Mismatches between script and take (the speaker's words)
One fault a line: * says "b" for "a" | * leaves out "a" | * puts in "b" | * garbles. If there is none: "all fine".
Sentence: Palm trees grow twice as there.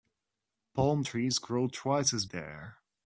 all fine